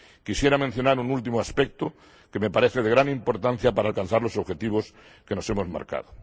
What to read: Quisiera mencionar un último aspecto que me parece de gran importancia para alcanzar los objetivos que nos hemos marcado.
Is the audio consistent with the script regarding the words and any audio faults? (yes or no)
yes